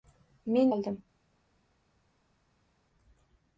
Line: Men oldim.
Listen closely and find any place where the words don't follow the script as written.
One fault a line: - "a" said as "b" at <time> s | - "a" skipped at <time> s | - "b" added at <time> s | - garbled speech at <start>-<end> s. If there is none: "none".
none